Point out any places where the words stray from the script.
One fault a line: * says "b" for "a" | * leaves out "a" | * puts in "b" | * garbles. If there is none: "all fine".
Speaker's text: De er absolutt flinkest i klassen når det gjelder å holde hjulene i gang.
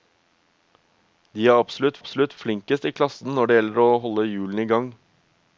* puts in "absolutt"